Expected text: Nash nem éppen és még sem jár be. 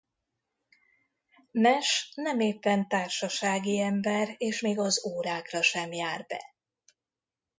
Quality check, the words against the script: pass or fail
fail